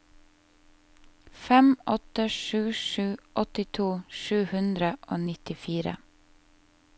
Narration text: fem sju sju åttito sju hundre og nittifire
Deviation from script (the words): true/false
true